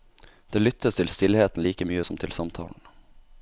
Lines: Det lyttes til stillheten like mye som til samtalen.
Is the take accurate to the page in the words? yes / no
yes